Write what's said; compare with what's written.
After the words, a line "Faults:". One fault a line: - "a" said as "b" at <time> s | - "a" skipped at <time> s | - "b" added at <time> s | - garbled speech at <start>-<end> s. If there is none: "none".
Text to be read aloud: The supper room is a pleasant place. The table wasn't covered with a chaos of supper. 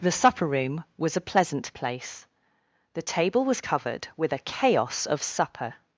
The supper room was a pleasant place. The table was covered with a chaos of supper.
Faults:
- "is" said as "was" at 1.0 s
- "wasn't" said as "was" at 3.5 s